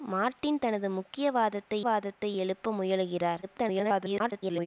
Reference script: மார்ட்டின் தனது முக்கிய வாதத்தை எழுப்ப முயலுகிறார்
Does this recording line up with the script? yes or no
no